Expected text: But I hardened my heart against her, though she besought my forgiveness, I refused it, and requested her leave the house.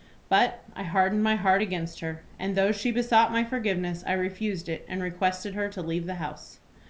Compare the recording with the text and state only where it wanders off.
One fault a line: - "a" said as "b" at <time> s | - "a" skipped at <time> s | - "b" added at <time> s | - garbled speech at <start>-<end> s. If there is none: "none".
- "and" added at 2.4 s
- "to" added at 5.7 s